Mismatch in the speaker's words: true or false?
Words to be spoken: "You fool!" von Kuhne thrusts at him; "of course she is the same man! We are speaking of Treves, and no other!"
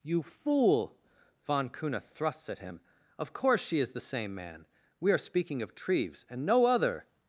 false